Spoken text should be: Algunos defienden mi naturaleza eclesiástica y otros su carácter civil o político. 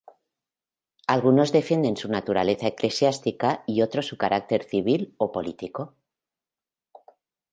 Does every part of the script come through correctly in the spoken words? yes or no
no